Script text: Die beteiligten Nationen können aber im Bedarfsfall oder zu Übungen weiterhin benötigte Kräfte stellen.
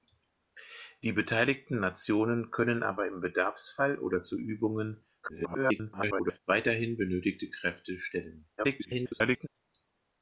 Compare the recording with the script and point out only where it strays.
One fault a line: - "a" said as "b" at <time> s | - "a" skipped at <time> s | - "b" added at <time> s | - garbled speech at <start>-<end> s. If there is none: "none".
- garbled speech at 5.2-6.4 s
- garbled speech at 8.6-9.5 s